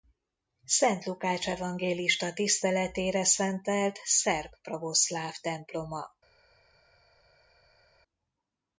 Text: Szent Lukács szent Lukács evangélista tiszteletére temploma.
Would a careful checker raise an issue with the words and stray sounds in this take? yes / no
yes